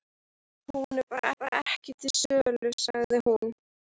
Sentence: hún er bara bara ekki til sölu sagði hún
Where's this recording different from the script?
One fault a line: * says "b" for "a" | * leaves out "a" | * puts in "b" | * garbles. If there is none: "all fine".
all fine